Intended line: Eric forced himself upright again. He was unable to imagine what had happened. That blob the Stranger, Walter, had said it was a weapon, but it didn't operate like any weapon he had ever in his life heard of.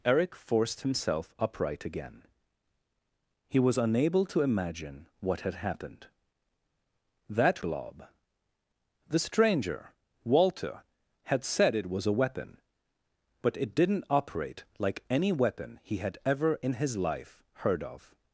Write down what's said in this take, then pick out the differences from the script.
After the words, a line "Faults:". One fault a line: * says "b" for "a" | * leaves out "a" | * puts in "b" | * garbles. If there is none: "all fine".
Eric forced himself upright again. He was unable to imagine what had happened. That blob the Stranger, Walter, had said it was a weapon, but it didn't operate like any weapon he had ever in his life heard of.
Faults:
all fine